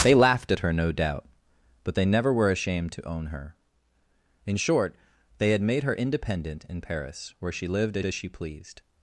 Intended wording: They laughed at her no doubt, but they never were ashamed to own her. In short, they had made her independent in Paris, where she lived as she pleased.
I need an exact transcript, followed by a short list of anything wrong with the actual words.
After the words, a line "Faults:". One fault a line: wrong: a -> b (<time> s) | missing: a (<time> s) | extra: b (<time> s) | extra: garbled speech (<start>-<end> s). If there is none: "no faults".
They laughed at her no doubt, but they never were ashamed to own her. In short, they had made her independent in Paris, where she lived as as she pleased.
Faults:
extra: as (8.0 s)